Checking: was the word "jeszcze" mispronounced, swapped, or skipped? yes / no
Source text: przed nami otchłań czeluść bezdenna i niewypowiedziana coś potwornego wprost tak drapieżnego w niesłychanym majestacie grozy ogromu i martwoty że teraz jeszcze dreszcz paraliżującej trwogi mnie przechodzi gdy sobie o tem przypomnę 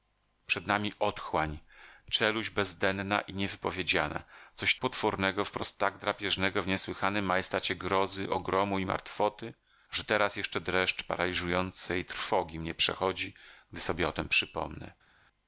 no